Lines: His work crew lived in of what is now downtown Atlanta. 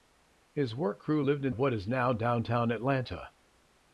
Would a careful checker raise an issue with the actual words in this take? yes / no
no